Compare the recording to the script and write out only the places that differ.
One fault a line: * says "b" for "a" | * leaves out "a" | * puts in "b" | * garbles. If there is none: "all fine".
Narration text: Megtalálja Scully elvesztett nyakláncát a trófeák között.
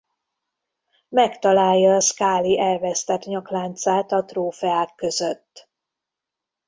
all fine